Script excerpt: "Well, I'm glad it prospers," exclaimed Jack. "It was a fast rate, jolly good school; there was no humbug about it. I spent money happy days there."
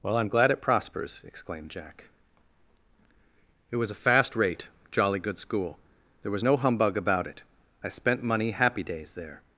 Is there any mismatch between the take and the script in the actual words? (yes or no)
no